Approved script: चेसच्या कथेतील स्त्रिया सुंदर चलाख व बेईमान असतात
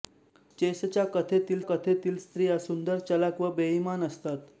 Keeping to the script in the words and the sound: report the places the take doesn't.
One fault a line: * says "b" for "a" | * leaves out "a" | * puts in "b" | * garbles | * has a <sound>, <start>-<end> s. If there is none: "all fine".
* puts in "कथेतील"